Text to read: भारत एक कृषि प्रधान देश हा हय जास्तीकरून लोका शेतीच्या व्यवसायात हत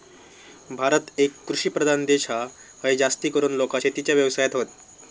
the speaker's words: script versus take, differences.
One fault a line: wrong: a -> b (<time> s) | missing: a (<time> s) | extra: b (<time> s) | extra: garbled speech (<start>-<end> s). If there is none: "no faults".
no faults